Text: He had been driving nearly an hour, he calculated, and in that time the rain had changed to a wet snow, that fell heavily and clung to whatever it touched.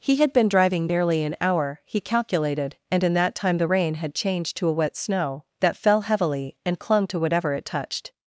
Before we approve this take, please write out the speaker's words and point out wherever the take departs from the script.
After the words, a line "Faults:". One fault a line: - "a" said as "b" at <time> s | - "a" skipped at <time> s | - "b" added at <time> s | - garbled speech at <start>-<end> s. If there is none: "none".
He had been driving nearly an hour, he calculated, and in that time the rain had changed to a wet snow, that fell heavily and clung to whatever it touched.
Faults:
none